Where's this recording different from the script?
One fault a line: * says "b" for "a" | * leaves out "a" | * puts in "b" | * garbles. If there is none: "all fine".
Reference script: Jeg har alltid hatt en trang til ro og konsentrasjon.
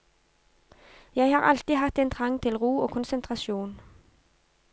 all fine